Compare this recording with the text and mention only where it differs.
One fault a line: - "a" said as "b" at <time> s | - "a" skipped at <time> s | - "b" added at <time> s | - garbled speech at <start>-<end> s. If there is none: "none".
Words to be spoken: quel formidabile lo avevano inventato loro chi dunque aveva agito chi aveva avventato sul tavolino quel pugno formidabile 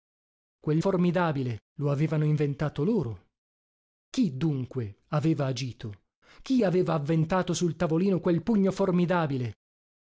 none